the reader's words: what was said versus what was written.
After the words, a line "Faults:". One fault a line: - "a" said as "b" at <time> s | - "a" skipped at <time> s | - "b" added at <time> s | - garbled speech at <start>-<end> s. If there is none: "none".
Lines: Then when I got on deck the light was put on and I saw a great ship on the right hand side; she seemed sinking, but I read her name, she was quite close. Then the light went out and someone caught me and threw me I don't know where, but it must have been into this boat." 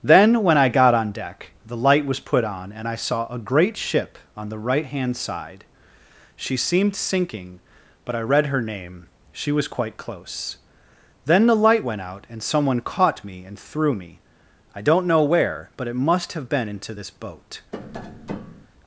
Then when I got on deck the light was put on and I saw a great ship on the right hand side; she seemed sinking, but I read her name, she was quite close. Then the light went out and someone caught me and threw me I don't know where, but it must have been into this boat."
Faults:
none